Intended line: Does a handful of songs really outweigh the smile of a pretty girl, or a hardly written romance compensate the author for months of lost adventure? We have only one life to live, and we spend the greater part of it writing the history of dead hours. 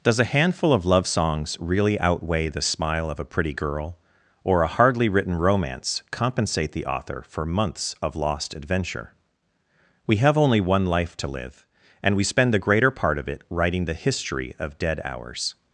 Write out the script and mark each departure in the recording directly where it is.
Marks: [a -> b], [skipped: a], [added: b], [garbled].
Does a handful of [added: love] songs really outweigh the smile of a pretty girl, or a hardly written romance compensate the author for months of lost adventure? We have only one life to live, and we spend the greater part of it writing the history of dead hours.